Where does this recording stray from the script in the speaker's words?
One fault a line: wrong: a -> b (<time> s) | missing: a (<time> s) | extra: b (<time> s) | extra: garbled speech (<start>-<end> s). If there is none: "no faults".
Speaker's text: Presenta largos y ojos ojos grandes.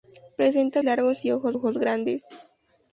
no faults